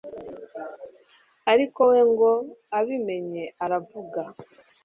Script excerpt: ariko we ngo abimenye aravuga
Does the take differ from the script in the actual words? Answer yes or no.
no